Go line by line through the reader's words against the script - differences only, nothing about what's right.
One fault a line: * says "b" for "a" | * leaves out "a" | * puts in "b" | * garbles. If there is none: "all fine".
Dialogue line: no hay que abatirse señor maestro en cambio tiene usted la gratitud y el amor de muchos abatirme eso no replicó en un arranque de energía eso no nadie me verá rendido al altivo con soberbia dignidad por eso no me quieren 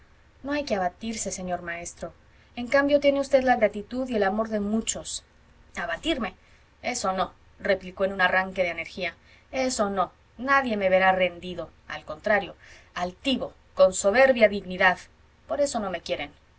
* puts in "contrario"